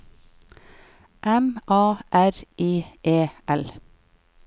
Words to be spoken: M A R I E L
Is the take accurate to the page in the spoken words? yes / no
yes